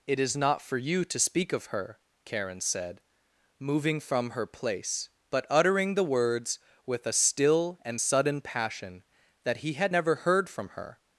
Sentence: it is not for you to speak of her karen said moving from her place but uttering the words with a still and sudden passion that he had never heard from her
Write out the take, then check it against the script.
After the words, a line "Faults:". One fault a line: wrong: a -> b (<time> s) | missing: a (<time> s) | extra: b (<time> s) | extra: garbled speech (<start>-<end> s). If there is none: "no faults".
it is not for you to speak of her karen said moving from her place but uttering the words with a still and sudden passion that he had never heard from her
Faults:
no faults